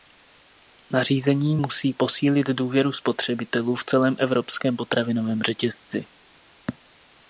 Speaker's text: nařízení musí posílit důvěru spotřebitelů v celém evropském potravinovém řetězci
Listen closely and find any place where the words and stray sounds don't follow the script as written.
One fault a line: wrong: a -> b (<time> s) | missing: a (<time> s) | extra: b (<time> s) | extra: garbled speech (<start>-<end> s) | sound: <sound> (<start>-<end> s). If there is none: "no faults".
no faults